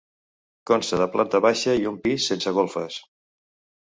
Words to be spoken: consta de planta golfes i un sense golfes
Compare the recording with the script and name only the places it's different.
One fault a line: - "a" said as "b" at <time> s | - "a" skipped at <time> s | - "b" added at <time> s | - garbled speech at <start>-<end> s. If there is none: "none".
- "golfes" said as "baixa" at 1.5 s
- "pis" added at 2.1 s